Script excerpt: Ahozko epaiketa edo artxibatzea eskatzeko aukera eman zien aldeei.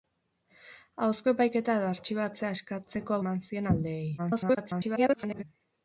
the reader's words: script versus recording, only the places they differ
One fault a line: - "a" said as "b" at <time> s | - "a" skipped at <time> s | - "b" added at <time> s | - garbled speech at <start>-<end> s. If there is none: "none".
- "aukera" skipped at 3.2 s
- garbled speech at 4.2-5.4 s